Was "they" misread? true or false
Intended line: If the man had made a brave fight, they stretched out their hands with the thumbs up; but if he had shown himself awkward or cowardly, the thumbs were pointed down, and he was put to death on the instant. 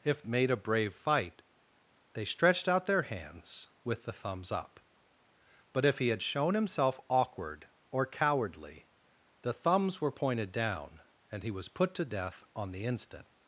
false